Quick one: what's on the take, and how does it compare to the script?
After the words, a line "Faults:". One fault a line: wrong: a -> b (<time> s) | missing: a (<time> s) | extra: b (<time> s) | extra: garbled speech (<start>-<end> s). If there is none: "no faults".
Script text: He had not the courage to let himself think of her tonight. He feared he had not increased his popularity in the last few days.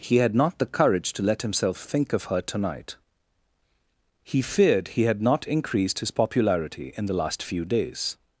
He had not the courage to let himself think of her tonight. He feared he had not increased his popularity in the last few days.
Faults:
no faults